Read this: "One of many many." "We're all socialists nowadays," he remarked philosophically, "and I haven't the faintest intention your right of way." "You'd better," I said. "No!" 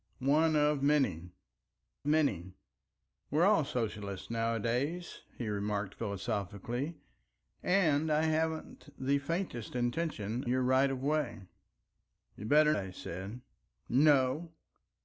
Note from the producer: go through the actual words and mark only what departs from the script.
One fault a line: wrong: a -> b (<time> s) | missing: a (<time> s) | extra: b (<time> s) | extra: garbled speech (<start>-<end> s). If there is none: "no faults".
no faults